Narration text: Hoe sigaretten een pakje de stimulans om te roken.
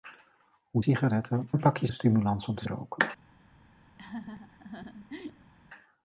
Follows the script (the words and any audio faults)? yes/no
no